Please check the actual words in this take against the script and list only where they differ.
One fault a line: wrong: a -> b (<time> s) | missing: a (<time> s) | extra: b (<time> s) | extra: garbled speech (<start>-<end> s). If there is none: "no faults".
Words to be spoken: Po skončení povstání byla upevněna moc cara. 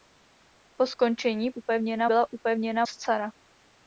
wrong: povstání -> upevněna (1.5 s)
missing: moc (2.8 s)